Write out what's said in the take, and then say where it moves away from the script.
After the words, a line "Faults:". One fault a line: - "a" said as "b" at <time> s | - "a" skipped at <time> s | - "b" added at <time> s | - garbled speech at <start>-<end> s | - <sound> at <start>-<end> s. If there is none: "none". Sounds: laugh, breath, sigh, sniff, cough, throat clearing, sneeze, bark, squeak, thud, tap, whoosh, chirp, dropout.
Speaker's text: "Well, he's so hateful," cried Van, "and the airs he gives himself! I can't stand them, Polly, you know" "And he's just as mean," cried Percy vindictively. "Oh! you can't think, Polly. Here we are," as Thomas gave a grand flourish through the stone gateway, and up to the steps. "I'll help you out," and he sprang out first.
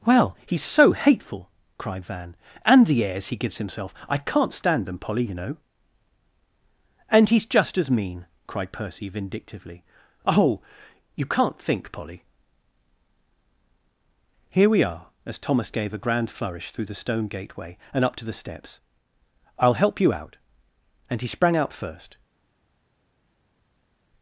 "Well, he's so hateful," cried Van, "and the airs he gives himself! I can't stand them, Polly, you know" "And he's just as mean," cried Percy vindictively. "Oh! you can't think, Polly. Here we are," as Thomas gave a grand flourish through the stone gateway, and up to the steps. "I'll help you out," and he sprang out first.
Faults:
none